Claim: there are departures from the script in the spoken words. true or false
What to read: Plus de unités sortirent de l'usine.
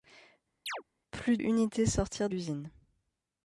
true